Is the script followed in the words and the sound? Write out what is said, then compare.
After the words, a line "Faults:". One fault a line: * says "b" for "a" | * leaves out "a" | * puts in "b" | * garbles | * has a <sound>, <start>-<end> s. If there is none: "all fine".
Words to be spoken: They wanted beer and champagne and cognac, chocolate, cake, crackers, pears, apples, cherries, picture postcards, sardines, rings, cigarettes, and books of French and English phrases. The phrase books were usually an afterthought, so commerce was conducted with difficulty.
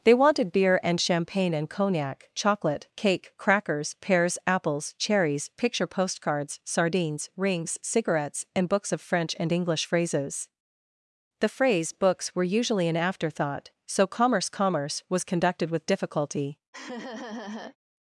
They wanted beer and champagne and cognac, chocolate, cake, crackers, pears, apples, cherries, picture postcards, sardines, rings, cigarettes, and books of French and English phrases. The phrase books were usually an afterthought, so commerce commerce was conducted with difficulty.
Faults:
* puts in "commerce"
* has a laugh, 16.7-17.8 s